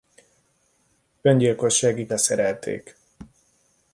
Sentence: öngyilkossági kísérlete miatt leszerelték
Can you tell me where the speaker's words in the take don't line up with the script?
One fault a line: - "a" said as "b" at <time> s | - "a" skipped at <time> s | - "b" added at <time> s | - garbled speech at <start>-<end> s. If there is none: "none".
- "kísérlete miatt" skipped at 2.1 s